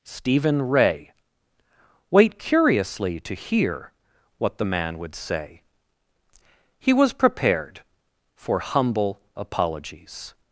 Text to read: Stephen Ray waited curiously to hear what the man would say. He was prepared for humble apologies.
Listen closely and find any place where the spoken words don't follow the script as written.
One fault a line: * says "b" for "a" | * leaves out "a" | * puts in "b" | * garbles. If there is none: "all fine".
* says "wait" for "waited"